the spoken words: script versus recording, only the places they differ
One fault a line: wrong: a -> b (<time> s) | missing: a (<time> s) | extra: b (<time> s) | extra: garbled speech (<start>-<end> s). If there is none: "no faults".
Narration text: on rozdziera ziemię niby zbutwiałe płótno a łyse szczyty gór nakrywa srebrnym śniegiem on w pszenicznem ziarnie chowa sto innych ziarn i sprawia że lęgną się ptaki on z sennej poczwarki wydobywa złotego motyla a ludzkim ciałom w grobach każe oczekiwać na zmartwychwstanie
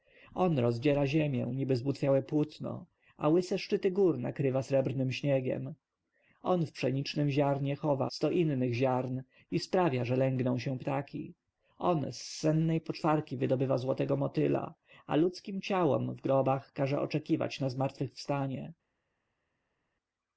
no faults